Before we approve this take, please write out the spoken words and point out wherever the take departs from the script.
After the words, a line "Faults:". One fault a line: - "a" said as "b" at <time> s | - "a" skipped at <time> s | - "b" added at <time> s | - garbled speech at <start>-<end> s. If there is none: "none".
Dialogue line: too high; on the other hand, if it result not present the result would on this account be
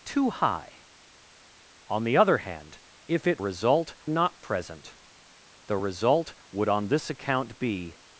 too high; on the other hand, if it result not present the result would on this account be
Faults:
none